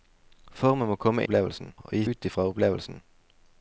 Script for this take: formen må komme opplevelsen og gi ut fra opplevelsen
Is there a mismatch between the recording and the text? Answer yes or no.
no